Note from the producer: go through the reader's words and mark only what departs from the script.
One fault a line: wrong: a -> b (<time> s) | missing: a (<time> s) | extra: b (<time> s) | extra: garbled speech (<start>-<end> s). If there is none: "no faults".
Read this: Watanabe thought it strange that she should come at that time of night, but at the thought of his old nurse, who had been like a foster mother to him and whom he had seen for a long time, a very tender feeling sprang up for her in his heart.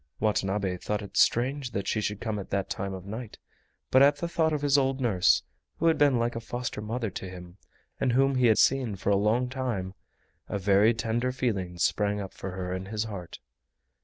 no faults